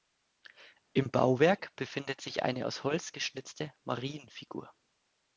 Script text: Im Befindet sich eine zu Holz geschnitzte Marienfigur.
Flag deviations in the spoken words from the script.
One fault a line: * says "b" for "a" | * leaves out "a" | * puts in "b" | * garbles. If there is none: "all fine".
* puts in "Bauwerk"
* says "aus" for "zu"